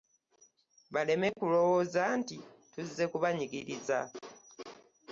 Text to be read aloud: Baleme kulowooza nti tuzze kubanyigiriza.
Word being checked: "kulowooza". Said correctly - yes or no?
yes